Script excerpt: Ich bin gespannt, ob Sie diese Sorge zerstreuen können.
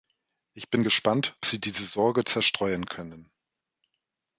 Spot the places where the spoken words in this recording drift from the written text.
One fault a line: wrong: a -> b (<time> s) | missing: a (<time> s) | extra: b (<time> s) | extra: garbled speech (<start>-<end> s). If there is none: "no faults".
missing: ob (1.3 s)